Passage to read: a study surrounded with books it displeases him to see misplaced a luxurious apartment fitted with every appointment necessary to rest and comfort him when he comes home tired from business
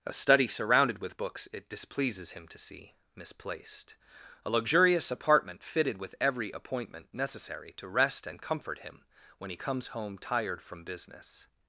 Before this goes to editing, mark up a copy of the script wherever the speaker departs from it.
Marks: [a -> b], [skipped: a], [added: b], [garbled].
a study surrounded with books it displeases him to see misplaced a luxurious apartment fitted with every appointment necessary to rest and comfort him when he comes home tired from business